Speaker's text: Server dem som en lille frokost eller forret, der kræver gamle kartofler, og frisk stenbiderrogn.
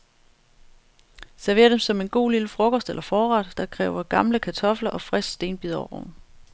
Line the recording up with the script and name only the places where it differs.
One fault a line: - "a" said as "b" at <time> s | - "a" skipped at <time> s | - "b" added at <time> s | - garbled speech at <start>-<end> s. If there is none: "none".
- "god" added at 2.1 s